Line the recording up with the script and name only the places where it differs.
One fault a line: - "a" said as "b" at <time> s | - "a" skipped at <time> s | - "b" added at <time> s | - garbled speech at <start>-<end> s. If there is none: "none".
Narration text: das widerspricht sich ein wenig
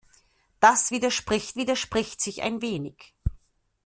- "widerspricht" added at 1.6 s